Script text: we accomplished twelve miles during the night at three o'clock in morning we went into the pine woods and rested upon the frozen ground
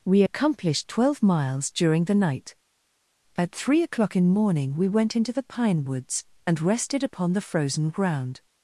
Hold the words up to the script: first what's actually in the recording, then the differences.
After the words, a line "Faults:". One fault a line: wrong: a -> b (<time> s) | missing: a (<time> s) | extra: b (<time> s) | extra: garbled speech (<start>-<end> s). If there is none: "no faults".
we accomplished twelve miles during the night at three o'clock in morning we went into the pine woods and rested upon the frozen ground
Faults:
no faults